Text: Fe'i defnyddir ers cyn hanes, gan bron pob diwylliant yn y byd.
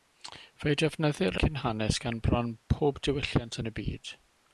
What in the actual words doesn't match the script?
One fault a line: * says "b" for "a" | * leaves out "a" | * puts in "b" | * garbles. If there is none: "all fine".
* leaves out "ers"